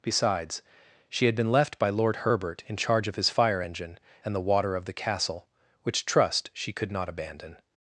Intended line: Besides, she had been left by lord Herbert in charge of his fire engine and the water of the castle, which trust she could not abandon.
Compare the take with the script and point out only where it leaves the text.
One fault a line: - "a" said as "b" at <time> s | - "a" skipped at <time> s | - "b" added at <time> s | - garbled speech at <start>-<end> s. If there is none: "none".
none